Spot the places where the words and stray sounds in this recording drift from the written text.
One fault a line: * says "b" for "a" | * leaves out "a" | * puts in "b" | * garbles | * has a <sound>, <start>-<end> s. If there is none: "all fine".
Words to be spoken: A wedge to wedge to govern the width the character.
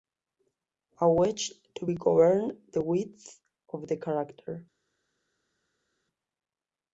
* leaves out "wedge to"
* puts in "of"